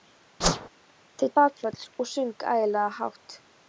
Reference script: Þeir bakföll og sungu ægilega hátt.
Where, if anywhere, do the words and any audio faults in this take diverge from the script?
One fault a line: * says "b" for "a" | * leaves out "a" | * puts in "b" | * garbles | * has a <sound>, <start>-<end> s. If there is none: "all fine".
* has a whoosh, 0.4-0.7 s